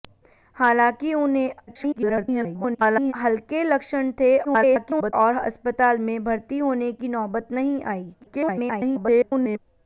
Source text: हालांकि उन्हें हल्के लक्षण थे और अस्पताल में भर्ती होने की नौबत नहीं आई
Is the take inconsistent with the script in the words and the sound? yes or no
yes